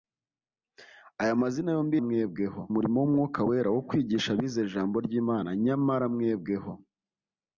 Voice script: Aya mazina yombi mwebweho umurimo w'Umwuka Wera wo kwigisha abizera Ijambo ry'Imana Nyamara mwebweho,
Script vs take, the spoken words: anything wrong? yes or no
no